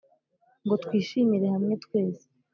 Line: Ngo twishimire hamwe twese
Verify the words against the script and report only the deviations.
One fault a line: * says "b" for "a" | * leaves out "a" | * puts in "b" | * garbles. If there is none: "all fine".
all fine